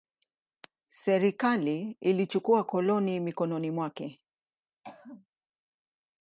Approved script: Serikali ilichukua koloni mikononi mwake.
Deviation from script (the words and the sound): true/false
true